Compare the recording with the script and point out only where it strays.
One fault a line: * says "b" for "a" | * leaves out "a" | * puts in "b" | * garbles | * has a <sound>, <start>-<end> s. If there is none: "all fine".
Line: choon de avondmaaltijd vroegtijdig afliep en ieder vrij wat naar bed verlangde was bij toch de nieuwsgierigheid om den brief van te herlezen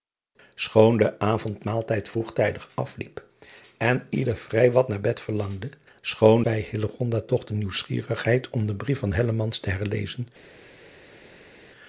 * says "choon" for "was"